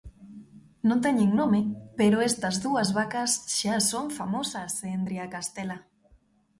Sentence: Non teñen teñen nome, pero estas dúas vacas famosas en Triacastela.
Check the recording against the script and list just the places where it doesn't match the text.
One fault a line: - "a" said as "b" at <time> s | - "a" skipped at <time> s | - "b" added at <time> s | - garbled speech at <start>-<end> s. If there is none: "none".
- "teñen" skipped at 1.3 s
- "xa son" added at 3.6 s